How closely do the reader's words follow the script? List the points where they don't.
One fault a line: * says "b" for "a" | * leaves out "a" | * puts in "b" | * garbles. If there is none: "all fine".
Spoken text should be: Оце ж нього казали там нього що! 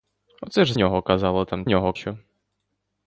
all fine